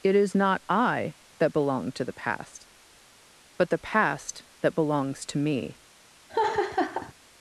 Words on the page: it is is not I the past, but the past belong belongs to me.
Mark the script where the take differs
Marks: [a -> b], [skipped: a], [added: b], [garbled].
it is [skipped: is] not I [added: that belong to] the past, but the past [belong -> that] belongs to me.